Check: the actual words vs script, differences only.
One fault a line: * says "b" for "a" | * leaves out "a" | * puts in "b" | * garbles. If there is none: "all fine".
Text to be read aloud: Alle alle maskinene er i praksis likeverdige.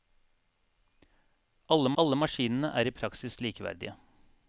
all fine